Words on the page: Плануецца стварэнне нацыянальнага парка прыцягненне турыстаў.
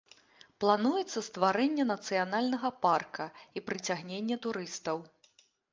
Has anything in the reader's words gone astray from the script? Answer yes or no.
yes